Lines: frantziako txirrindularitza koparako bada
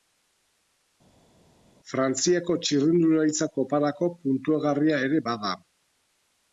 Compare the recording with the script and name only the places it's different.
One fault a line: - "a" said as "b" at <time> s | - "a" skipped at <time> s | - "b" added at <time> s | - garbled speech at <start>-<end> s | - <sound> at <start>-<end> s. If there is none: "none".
- "puntuagarria ere" added at 4.3 s